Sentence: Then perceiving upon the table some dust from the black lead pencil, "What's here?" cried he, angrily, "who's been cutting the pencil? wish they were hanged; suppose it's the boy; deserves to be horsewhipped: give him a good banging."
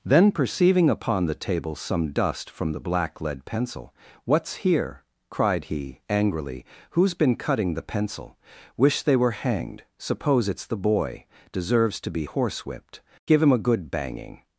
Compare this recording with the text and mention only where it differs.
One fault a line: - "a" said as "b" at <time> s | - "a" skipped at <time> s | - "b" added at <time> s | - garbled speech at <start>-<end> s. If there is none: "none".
none